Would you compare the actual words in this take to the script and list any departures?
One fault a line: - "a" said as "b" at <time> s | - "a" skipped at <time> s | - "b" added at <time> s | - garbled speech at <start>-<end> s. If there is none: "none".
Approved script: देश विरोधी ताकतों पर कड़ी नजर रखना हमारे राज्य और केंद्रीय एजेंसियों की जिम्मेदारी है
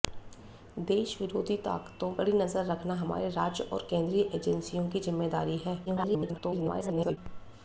- "पर" skipped at 2.1 s
- garbled speech at 5.8-7.2 s